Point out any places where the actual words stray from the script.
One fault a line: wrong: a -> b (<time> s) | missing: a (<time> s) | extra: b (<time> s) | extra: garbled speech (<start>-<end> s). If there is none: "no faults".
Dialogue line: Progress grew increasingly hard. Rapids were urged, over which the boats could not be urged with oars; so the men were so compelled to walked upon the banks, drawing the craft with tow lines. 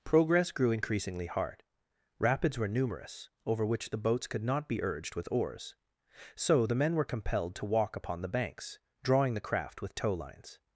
wrong: urged -> numerous (2.7 s)
missing: so (7.0 s)
wrong: walked -> walk (7.7 s)